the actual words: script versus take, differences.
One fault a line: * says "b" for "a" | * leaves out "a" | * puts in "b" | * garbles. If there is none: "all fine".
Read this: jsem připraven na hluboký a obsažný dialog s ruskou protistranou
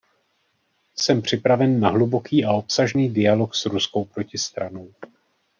all fine